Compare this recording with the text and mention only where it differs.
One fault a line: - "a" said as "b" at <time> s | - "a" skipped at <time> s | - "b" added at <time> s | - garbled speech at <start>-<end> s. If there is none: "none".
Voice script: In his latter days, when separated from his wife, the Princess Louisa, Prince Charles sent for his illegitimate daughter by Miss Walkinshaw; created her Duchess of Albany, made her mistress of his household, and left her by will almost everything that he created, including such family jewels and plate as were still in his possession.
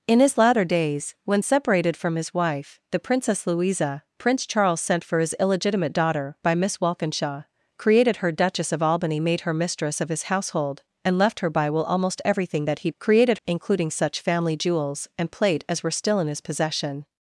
none